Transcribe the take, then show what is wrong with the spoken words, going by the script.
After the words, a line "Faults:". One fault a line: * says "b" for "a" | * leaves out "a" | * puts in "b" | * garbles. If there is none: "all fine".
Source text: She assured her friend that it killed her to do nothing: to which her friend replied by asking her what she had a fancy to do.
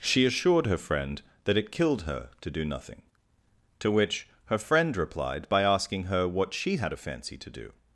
She assured her friend that it killed her to do nothing: to which her friend replied by asking her what she had a fancy to do.
Faults:
all fine